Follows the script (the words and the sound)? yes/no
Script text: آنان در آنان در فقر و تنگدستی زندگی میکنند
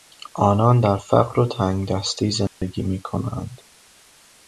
no